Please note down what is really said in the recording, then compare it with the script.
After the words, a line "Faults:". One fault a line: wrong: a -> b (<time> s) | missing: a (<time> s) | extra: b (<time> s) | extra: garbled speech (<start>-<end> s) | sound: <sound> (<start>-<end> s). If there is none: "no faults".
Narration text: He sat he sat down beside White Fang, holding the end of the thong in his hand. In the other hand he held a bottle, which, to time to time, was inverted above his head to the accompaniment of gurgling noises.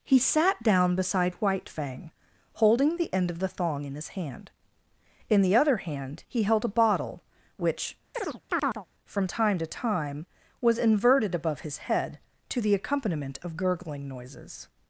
He sat down beside White Fang, holding the end of the thong in his hand. In the other hand he held a bottle, which, from time to time, was inverted above his head to the accompaniment of gurgling noises.
Faults:
missing: he sat (0.6 s)
sound: chirp (8.1-8.9 s)
wrong: to -> from (9.0 s)